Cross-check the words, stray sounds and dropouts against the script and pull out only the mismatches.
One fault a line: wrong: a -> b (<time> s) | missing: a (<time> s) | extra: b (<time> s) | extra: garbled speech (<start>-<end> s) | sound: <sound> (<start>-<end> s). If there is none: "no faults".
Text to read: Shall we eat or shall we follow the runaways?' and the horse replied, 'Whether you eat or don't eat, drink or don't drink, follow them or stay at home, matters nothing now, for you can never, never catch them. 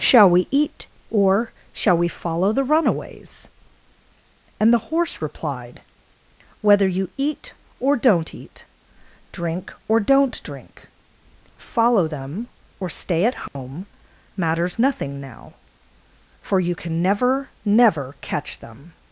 sound: dropout (13.5-13.6 s)